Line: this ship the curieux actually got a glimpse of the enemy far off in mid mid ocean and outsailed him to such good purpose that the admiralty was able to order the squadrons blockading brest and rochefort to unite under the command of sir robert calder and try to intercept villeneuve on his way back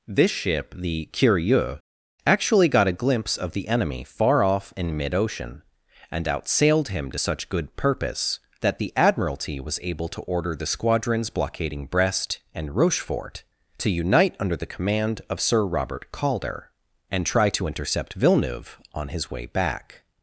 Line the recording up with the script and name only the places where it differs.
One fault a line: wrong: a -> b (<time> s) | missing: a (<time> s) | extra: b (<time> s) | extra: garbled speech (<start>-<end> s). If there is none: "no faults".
missing: mid (5.1 s)